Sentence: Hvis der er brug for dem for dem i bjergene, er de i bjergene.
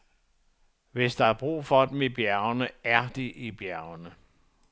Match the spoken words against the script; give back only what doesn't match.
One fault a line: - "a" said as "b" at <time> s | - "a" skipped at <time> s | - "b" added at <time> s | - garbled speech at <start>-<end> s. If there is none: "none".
- "for dem" skipped at 2.0 s